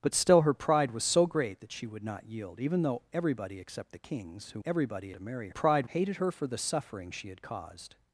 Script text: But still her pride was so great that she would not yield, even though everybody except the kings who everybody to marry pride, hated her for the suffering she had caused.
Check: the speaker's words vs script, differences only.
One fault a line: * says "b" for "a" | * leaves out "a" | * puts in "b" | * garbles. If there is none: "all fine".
all fine